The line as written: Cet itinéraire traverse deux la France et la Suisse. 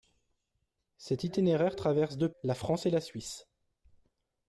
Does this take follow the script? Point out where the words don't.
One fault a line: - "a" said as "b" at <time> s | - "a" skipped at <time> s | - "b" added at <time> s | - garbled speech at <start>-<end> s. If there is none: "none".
none